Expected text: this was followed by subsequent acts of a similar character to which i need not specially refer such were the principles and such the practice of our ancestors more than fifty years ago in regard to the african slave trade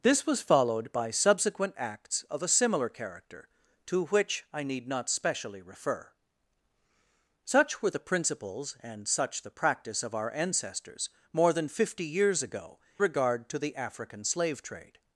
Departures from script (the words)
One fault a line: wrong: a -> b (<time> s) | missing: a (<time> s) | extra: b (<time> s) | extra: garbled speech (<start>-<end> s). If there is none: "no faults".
missing: in (12.8 s)